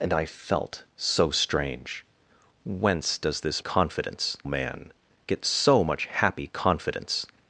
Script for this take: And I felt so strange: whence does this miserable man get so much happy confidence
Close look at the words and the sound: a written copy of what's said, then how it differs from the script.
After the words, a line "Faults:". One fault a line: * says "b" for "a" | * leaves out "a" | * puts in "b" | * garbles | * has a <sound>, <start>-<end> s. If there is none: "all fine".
And I felt so strange: whence does this confidence man get so much happy confidence
Faults:
* says "confidence" for "miserable"